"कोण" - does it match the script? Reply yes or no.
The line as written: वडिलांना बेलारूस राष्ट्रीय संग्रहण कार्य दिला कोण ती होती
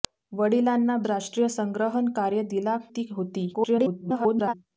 no